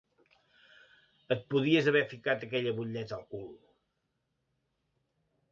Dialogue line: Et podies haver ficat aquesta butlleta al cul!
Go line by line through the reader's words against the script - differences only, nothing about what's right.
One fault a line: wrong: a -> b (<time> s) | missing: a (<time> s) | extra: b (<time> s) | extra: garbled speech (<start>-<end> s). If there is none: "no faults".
wrong: aquesta -> aquella (2.5 s)